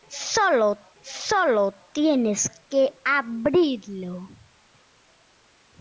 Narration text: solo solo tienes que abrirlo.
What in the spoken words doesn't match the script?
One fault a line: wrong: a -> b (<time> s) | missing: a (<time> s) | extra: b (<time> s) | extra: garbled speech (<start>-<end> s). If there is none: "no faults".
no faults